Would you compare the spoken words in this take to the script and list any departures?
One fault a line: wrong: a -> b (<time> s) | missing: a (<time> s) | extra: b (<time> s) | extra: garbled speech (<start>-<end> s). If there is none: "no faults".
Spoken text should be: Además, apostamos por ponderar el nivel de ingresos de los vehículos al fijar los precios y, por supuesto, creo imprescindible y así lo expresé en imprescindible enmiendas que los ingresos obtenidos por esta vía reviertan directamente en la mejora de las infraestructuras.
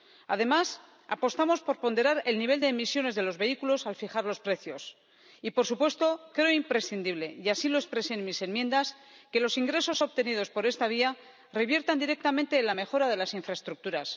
wrong: ingresos -> emisiones (2.7 s)
wrong: imprescindible -> mis (8.2 s)